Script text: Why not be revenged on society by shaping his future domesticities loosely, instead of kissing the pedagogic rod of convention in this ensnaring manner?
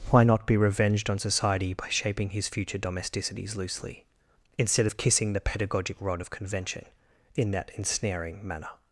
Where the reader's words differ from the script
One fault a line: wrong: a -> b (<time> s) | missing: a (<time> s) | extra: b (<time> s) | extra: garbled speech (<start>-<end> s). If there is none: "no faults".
wrong: this -> that (7.5 s)